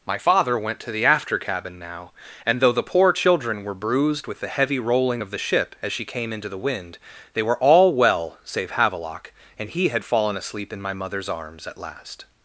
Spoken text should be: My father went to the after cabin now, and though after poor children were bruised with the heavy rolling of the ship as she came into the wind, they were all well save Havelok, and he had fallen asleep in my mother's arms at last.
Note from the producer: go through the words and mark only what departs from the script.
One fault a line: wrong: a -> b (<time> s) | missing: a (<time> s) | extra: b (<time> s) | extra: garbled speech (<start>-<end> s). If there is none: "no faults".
wrong: after -> the (2.7 s)